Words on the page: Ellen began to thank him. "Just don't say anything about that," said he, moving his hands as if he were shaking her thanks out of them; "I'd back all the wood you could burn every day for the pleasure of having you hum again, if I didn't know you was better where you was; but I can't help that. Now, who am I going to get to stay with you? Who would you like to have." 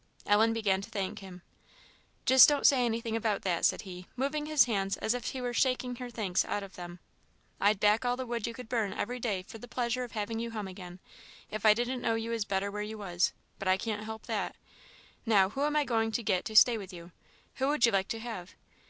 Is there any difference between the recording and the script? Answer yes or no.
no